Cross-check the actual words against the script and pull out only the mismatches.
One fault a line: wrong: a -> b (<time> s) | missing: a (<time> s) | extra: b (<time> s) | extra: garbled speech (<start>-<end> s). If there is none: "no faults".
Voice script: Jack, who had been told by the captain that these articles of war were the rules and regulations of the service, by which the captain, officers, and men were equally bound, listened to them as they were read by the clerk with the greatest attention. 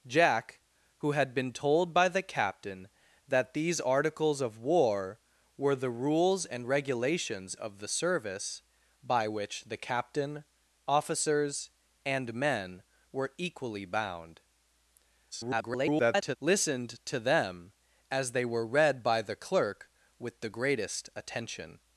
extra: garbled speech (15.3-16.4 s)